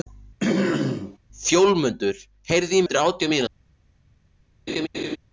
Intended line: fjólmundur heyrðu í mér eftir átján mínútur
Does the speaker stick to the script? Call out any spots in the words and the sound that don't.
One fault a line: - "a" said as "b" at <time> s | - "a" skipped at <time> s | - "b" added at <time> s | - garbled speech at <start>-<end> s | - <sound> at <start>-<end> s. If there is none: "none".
- throat clearing at 0.4-1.2 s
- "mér" skipped at 2.8 s
- laugh at 4.7-5.2 s